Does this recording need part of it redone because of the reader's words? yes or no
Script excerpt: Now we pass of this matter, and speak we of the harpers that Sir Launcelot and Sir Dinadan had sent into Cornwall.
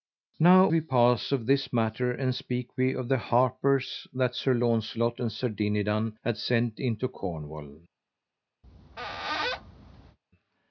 no